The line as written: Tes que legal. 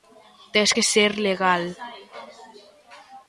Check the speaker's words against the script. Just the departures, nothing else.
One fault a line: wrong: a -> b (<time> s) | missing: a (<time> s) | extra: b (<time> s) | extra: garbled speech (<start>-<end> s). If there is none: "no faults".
extra: ser (0.9 s)